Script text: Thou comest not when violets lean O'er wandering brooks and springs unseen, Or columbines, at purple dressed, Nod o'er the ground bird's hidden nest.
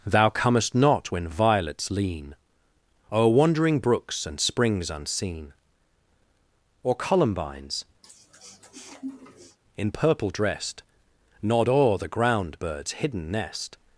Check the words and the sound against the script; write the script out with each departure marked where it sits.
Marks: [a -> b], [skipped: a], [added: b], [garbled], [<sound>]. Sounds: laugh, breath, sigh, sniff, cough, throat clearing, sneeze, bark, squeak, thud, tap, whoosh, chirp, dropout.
Thou comest not when violets lean O'er wandering brooks and springs unseen, Or columbines, [sniff] [at -> in] purple dressed, Nod o'er the ground bird's hidden nest.